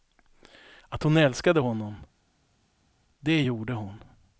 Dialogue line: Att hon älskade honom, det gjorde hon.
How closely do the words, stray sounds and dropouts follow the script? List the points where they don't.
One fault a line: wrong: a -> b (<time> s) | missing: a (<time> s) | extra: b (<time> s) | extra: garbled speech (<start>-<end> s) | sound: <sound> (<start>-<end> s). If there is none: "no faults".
no faults